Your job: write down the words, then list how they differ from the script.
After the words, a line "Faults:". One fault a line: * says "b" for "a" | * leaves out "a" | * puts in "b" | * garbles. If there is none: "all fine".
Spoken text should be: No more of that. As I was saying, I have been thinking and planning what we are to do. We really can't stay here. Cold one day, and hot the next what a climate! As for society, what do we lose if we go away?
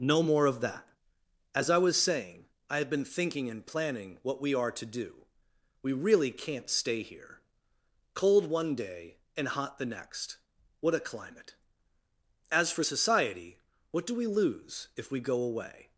No more of that. As I was saying, I have been thinking and planning what we are to do. We really can't stay here. Cold one day, and hot the next what a climate! As for society, what do we lose if we go away?
Faults:
all fine